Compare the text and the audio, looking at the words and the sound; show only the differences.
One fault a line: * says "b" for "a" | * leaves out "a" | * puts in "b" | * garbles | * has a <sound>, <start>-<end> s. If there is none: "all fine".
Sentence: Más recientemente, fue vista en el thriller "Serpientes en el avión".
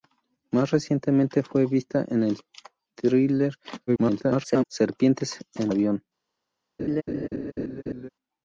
* garbles
* leaves out "el"
* has a laugh, 6.8-8.1 s